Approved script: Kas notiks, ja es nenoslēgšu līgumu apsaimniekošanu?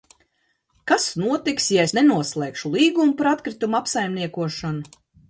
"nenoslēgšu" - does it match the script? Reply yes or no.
yes